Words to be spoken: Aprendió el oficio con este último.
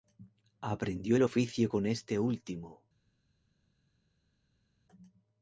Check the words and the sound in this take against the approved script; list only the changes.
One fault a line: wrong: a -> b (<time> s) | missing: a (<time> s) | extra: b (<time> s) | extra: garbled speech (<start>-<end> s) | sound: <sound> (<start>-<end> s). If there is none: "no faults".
no faults